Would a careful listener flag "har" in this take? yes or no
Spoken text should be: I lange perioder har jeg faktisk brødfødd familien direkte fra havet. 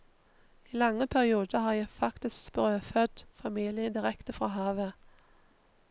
no